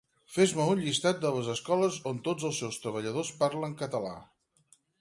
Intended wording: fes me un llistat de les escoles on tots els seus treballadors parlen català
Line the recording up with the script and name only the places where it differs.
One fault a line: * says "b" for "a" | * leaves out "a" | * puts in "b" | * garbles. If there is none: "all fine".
all fine